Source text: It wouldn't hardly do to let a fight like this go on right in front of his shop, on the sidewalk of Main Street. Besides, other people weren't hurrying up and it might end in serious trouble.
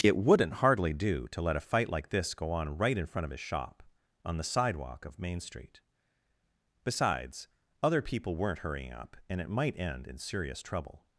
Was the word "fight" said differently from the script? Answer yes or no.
no